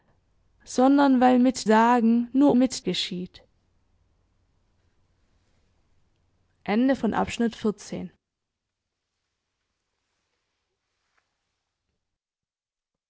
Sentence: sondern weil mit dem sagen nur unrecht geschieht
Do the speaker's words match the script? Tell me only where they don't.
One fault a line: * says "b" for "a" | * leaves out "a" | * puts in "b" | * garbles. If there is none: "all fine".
* leaves out "dem"
* says "mit" for "unrecht"